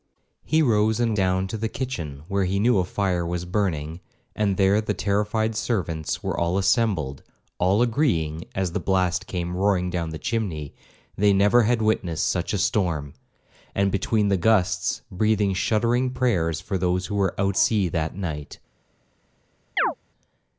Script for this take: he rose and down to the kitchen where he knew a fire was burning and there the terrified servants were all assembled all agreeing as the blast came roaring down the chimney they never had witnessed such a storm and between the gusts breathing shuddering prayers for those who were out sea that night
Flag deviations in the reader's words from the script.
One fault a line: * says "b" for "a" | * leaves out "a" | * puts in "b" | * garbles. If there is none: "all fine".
all fine